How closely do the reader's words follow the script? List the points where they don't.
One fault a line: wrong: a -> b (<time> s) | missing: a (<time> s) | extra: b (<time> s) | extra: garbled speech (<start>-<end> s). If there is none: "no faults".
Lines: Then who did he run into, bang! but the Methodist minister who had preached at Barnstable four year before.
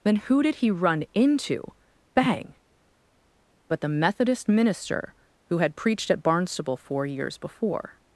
wrong: year -> years (7.0 s)